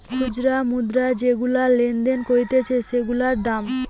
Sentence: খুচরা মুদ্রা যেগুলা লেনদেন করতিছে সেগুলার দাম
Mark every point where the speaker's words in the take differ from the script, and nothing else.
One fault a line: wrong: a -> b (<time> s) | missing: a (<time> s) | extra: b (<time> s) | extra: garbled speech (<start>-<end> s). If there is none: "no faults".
no faults